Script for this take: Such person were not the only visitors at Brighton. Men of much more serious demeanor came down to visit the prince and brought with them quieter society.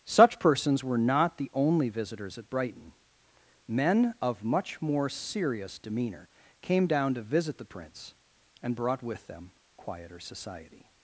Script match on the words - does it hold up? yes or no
no